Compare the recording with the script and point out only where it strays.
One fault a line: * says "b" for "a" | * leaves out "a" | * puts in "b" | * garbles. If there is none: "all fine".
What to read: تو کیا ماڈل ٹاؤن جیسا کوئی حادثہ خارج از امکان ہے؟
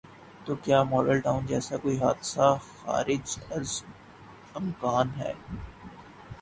all fine